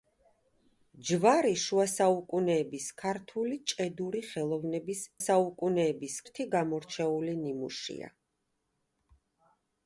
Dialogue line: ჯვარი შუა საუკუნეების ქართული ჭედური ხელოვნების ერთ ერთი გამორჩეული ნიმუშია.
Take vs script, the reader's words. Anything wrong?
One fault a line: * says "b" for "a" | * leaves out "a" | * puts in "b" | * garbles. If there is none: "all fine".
* says "საუკუნეების" for "ერთ"